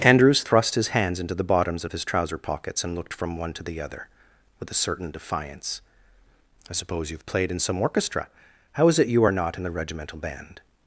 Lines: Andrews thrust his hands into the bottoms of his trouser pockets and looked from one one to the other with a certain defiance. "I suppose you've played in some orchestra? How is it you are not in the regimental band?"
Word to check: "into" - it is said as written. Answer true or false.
true